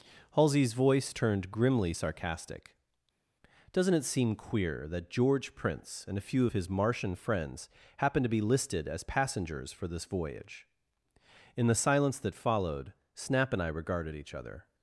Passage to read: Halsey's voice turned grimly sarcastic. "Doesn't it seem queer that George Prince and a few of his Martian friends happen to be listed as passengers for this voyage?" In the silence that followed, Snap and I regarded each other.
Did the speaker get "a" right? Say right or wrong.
right